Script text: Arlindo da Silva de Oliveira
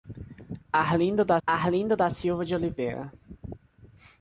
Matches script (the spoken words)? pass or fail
fail